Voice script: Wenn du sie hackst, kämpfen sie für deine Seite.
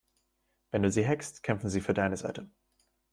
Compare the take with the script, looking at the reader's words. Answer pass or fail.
pass